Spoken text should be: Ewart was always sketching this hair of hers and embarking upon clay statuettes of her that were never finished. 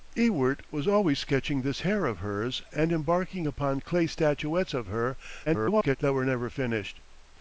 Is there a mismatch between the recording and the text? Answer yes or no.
yes